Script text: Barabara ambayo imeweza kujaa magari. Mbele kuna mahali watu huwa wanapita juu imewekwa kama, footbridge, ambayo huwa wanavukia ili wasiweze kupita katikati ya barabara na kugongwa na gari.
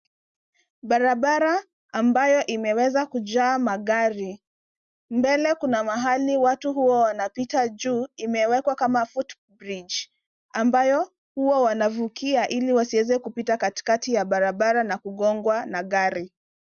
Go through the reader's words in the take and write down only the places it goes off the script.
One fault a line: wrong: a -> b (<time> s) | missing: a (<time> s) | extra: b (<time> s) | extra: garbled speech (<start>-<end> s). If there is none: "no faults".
no faults